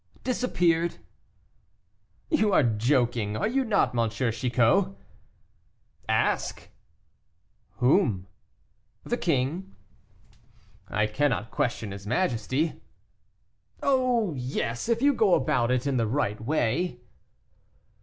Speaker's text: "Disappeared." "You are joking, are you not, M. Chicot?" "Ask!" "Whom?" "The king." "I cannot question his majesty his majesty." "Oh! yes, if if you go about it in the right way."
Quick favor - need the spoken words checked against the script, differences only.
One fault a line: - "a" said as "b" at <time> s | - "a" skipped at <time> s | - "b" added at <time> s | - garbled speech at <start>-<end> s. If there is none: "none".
- "his majesty" skipped at 12.8 s
- "if" skipped at 15.0 s